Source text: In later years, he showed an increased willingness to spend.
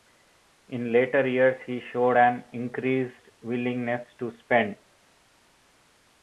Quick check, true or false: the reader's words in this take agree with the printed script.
true